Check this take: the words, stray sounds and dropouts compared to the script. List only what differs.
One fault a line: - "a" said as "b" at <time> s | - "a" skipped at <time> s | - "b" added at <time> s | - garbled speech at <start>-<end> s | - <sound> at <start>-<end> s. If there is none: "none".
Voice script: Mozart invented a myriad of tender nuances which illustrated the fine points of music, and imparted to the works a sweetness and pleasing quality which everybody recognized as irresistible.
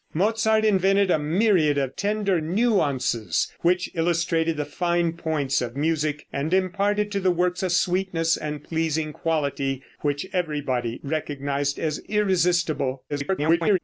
- garbled speech at 13.1-13.8 s